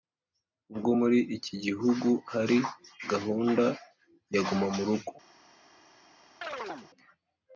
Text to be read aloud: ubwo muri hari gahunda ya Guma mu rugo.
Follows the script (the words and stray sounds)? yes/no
no